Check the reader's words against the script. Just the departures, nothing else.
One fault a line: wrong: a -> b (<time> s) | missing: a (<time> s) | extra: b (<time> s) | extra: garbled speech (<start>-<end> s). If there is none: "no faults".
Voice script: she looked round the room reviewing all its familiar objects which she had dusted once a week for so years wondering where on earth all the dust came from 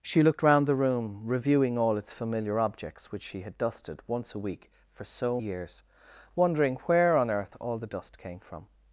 no faults